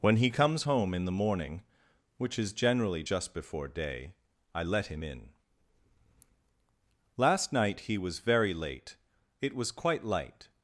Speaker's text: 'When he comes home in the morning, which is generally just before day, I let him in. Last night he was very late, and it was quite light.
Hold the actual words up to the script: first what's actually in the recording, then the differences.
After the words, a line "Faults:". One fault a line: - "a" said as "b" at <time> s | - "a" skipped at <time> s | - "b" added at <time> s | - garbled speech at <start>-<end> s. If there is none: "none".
'When he comes home in the morning, which is generally just before day, I let him in. Last night he was very late, it was quite light.
Faults:
- "and" skipped at 9.0 s